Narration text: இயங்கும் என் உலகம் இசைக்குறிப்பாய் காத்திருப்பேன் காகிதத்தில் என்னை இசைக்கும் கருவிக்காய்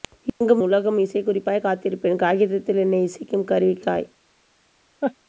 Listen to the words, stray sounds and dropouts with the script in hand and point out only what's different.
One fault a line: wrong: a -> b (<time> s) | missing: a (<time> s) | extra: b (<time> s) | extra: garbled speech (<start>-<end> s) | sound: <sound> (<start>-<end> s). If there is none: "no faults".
missing: என் (0.6 s)
sound: laugh (5.0-5.2 s)